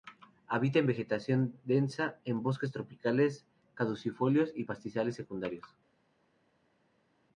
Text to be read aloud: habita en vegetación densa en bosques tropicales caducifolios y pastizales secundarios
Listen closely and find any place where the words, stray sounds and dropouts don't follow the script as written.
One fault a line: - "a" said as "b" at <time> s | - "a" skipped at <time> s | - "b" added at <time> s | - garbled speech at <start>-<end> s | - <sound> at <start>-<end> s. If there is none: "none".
none